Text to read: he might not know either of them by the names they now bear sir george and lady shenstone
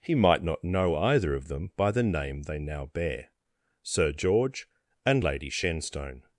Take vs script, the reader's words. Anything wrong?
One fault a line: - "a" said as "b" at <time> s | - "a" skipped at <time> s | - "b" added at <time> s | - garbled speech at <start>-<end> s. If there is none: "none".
- "names" said as "name" at 2.0 s